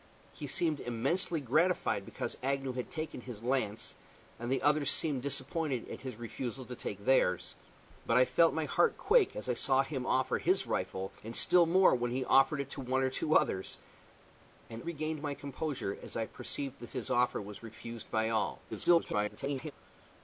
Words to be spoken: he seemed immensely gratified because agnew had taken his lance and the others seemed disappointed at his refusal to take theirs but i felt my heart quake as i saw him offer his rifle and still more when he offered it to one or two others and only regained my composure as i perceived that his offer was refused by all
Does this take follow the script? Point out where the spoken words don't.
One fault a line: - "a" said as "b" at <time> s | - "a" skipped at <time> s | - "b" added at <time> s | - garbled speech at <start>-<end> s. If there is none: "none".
- "only" skipped at 14.8 s
- garbled speech at 18.7-19.7 s